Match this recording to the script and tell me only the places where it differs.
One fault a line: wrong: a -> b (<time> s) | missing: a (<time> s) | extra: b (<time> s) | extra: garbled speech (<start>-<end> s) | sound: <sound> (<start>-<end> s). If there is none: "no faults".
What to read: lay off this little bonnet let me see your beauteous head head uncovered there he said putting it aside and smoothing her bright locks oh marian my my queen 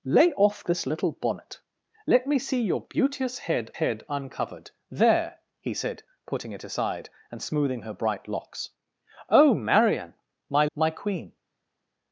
no faults